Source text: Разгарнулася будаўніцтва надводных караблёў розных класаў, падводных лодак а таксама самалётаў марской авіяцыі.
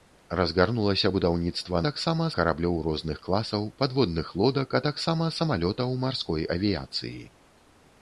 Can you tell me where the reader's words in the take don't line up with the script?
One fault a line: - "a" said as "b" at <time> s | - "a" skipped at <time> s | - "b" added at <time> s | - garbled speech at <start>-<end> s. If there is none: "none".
- "надводных" said as "таксама" at 1.9 s